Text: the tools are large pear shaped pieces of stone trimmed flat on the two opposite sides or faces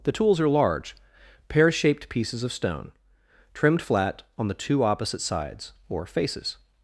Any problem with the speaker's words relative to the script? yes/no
no